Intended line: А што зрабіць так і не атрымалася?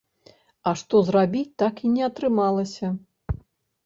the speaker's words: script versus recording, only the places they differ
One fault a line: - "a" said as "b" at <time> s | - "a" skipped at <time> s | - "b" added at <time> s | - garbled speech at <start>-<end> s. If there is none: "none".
none